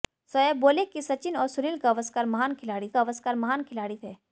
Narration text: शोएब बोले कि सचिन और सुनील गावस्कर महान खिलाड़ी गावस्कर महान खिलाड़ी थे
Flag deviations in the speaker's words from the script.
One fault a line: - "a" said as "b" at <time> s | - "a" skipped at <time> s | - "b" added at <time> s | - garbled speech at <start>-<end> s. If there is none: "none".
none